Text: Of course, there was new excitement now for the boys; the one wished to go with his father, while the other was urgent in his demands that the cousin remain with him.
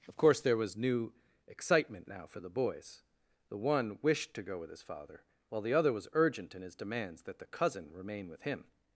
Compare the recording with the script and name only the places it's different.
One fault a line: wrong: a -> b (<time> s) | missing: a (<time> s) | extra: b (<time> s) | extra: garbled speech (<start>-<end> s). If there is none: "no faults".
no faults